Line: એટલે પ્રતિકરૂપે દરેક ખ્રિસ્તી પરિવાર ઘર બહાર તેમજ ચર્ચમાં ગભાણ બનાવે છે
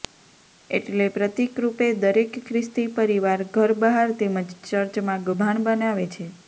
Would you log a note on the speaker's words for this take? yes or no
no